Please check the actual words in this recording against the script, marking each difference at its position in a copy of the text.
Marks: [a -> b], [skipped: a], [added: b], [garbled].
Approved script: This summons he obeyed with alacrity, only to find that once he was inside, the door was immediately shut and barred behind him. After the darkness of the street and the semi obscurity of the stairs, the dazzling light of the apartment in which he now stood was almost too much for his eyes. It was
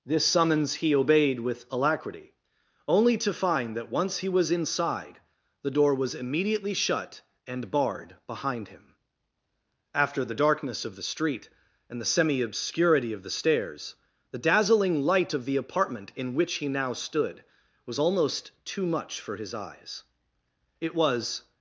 This summons he obeyed with alacrity, only to find that once he was inside, the door was immediately shut and barred behind him. After the darkness of the street and the semi obscurity of the stairs, the dazzling light of the apartment in which he now stood was almost too much for his eyes. It was